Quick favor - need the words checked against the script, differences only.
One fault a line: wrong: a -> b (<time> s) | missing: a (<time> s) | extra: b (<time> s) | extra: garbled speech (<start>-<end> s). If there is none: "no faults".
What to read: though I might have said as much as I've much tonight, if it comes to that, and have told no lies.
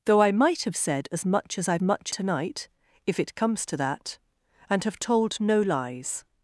no faults